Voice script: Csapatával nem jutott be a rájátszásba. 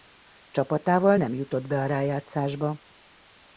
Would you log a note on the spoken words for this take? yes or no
no